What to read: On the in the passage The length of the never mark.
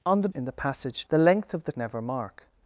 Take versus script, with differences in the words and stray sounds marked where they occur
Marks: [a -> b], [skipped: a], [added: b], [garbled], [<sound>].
On the in the passage The length of the never mark.